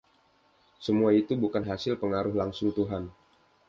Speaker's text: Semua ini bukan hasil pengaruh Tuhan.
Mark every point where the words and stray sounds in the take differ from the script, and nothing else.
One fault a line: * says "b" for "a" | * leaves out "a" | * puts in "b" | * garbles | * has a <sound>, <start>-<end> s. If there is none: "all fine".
* says "itu" for "ini"
* puts in "langsung"